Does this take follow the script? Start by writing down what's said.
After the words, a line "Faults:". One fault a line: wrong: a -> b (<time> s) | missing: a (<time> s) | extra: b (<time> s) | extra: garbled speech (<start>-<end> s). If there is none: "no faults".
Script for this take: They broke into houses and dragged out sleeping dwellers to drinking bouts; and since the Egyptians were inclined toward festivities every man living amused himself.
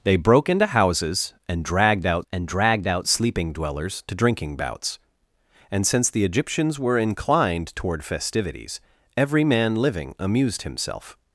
They broke into houses and dragged out and dragged out sleeping dwellers to drinking bouts; and since the Egyptians were inclined toward festivities every man living amused himself.
Faults:
extra: and dragged out (2.3 s)